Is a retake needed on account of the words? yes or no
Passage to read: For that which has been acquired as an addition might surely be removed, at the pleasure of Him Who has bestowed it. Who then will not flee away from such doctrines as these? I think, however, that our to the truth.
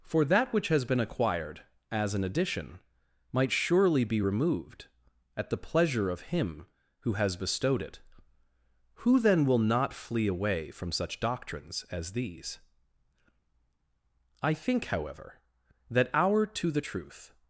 no